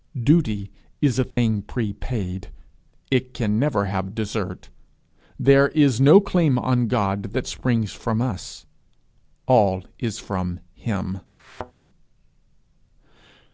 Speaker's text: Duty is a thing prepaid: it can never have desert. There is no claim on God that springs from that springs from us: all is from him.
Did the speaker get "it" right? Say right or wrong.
right